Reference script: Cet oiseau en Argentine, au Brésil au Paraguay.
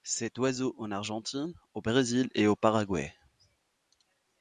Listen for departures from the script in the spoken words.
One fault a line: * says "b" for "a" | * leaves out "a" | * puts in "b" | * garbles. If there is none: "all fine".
* puts in "et"